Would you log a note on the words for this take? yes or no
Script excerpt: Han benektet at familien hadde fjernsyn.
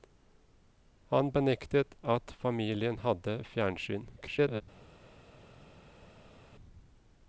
yes